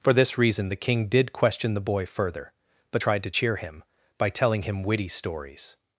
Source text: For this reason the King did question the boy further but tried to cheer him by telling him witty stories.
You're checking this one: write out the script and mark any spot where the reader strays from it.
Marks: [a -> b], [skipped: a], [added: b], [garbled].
For this reason the King did question the boy further but tried to cheer him by telling him witty stories.